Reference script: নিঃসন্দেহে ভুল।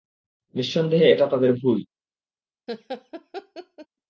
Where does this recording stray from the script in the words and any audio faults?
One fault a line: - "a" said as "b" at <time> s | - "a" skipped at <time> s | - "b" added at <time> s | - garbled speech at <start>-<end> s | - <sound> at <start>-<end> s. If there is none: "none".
- "এটা তাদের" added at 1.1 s
- laugh at 2.7-3.9 s